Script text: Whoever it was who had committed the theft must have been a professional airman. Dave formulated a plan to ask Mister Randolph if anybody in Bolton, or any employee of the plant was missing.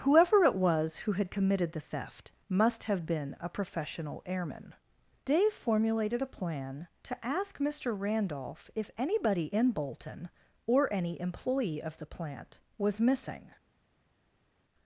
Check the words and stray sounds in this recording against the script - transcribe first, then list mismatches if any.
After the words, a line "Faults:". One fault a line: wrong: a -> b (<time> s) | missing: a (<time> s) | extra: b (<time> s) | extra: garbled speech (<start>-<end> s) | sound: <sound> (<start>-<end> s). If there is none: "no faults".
Whoever it was who had committed the theft must have been a professional airman. Dave formulated a plan to ask Mister Randolph if anybody in Bolton, or any employee of the plant was missing.
Faults:
no faults